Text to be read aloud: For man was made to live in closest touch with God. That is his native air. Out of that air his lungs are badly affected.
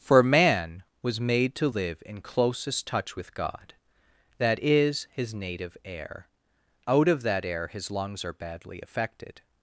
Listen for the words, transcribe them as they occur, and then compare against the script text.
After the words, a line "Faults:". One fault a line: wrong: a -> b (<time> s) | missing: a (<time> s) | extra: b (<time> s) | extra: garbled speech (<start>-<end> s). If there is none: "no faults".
For man was made to live in closest touch with God. That is his native air. Out of that air his lungs are badly affected.
Faults:
no faults